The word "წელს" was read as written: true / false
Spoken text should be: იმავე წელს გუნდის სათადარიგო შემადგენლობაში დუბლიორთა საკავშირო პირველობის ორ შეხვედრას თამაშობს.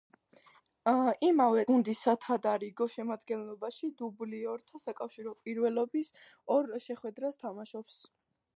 false